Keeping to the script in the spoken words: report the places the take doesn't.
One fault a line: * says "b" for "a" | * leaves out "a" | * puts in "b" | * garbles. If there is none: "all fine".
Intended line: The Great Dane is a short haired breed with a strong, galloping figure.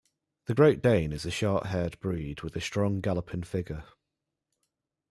all fine